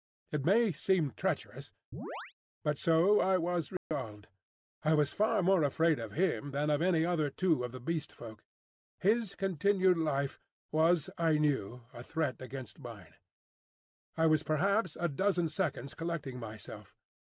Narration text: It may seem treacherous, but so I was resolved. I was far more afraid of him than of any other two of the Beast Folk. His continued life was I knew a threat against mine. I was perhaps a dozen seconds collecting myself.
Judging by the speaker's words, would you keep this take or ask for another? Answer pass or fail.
pass